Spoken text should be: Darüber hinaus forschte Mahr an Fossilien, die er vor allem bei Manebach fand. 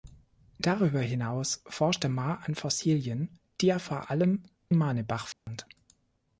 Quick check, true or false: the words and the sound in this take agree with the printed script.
false